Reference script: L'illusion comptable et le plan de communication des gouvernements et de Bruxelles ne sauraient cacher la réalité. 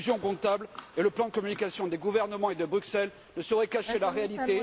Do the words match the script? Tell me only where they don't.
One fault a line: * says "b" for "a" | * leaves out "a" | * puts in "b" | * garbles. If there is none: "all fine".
all fine